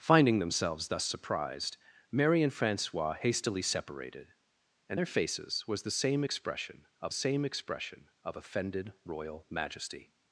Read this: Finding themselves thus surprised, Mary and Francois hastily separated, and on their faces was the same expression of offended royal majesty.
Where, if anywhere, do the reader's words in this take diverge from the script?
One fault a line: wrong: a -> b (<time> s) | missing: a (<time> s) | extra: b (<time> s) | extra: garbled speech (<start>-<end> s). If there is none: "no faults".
missing: on (5.0 s)
extra: same expression of (7.1 s)